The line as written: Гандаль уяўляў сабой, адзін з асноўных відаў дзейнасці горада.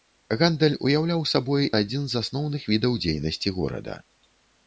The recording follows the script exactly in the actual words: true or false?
true